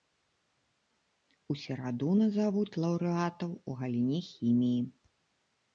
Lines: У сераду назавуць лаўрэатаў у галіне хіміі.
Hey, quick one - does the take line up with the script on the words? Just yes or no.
yes